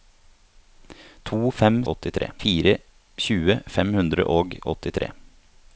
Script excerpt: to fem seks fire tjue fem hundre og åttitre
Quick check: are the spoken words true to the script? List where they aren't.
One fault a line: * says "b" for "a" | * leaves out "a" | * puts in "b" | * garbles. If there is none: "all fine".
* says "åttitre" for "seks"